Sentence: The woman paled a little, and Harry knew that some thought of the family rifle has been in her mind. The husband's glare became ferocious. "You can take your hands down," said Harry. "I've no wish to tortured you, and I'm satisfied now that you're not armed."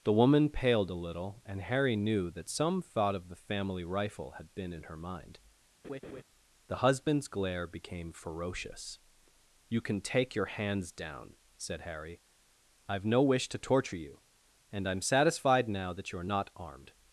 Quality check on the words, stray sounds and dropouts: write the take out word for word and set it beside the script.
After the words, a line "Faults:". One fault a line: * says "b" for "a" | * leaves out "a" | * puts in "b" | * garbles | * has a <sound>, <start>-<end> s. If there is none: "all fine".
The woman paled a little, and Harry knew that some thought of the family rifle had been in her mind. The husband's glare became ferocious. "You can take your hands down," said Harry. "I've no wish to torture you, and I'm satisfied now that you're not armed."
Faults:
* says "had" for "has"
* has a laugh, 5.8-6.2 s
* says "torture" for "tortured"